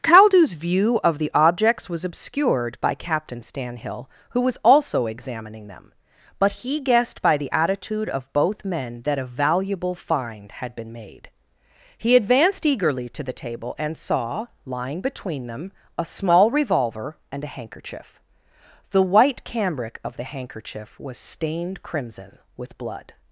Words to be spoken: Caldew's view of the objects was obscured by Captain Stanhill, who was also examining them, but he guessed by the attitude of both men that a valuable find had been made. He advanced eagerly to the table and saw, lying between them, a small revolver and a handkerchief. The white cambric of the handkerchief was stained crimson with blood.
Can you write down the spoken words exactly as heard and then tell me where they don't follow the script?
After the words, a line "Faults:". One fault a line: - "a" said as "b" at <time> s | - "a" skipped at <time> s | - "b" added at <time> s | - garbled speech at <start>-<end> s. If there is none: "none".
Caldew's view of the objects was obscured by Captain Stanhill, who was also examining them, but he guessed by the attitude of both men that a valuable find had been made. He advanced eagerly to the table and saw, lying between them, a small revolver and a handkerchief. The white cambric of the handkerchief was stained crimson with blood.
Faults:
none